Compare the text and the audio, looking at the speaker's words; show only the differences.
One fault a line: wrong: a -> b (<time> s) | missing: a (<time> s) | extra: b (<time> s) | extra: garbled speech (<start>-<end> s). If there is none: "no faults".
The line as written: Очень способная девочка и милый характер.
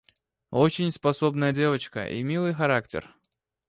no faults